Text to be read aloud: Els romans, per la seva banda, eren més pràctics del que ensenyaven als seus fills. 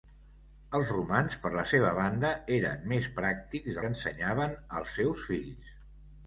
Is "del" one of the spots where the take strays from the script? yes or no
yes